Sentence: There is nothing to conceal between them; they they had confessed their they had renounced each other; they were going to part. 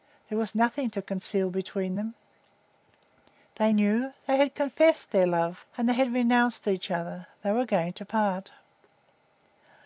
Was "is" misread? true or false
true